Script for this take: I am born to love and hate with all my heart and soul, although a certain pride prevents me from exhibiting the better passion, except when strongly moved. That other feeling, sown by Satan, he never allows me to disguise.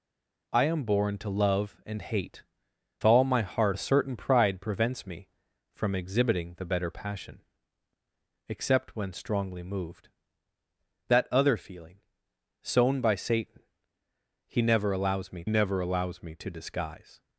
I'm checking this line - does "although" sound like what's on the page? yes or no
no